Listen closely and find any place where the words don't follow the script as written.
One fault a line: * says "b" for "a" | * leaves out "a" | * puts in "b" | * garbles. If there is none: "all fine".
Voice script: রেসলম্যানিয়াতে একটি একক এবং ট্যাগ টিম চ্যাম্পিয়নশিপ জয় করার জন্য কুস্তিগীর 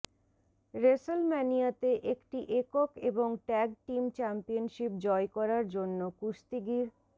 all fine